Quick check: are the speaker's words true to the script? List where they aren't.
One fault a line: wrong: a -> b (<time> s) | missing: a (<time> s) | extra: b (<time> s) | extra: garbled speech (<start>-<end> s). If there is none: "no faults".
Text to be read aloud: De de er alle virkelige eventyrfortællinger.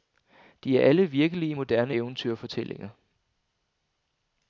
missing: de (0.8 s)
extra: moderne (1.5 s)